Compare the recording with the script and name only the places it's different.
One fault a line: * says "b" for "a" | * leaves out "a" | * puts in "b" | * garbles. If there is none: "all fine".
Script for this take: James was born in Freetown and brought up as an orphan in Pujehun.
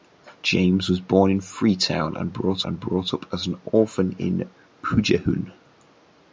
* puts in "and brought"